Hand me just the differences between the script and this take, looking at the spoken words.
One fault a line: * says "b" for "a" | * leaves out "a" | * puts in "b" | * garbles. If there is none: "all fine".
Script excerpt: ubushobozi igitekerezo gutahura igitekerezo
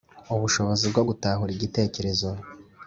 * says "bwo" for "igitekerezo"